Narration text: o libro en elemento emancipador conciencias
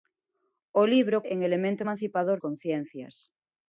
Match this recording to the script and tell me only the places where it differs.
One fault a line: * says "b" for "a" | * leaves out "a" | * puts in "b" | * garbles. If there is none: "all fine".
all fine